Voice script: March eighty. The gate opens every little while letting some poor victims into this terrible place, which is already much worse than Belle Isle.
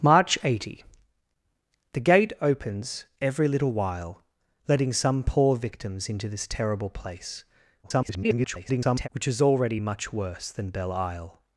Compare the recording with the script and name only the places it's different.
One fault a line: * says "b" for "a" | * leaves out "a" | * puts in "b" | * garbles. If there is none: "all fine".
* garbles